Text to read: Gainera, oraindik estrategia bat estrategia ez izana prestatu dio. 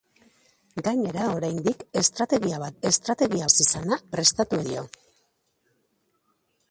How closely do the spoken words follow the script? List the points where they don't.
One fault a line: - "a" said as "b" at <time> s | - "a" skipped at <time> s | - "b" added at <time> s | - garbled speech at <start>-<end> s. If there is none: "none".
none